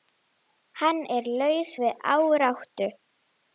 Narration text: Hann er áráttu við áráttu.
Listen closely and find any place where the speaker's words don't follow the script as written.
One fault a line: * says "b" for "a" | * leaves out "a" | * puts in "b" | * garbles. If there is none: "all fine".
* says "laus" for "áráttu"